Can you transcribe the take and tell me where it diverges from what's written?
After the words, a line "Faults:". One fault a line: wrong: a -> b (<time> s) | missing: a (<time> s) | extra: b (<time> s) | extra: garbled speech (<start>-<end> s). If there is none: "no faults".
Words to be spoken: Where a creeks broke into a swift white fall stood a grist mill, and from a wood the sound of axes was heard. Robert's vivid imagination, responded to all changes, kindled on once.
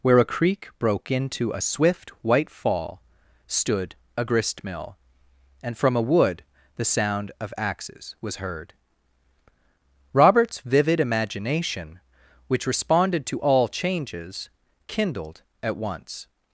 Where a creek broke into a swift white fall stood a grist mill, and from a wood the sound of axes was heard. Robert's vivid imagination, which responded to all changes, kindled at once.
Faults:
wrong: creeks -> creek (0.2 s)
extra: which (12.5 s)
wrong: on -> at (15.6 s)